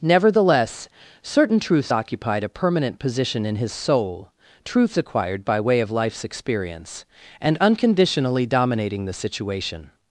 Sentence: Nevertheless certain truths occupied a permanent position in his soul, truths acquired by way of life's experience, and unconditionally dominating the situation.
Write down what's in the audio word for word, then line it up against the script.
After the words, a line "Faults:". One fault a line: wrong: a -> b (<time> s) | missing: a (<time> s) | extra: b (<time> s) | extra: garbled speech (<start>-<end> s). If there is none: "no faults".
Nevertheless certain truths occupied a permanent position in his soul, truths acquired by way of life's experience, and unconditionally dominating the situation.
Faults:
no faults